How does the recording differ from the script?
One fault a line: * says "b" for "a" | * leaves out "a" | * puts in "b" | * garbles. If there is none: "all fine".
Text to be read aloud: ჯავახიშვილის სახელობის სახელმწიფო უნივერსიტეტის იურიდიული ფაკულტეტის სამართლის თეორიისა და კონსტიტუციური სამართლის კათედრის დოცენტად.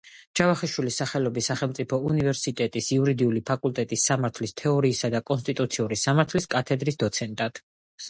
all fine